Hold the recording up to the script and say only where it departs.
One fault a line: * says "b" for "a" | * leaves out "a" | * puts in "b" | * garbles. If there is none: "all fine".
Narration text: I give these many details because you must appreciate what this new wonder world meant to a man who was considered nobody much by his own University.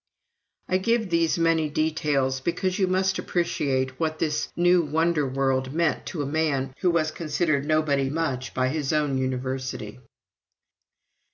all fine